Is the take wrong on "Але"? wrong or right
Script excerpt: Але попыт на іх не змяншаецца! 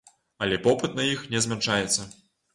right